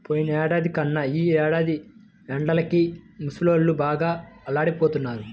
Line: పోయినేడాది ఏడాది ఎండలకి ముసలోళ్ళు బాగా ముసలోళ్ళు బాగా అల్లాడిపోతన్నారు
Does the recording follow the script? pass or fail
fail